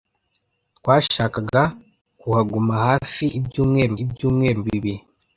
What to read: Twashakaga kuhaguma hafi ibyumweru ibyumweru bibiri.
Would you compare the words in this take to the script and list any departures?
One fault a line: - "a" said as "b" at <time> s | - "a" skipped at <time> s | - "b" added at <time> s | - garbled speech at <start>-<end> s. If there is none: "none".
none